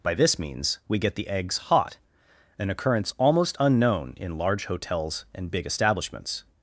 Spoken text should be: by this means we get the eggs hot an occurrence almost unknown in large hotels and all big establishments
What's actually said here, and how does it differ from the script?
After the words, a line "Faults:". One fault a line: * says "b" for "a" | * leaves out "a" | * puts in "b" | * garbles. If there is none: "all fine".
by this means we get the eggs hot an occurrence almost unknown in large hotels and big establishments
Faults:
* leaves out "all"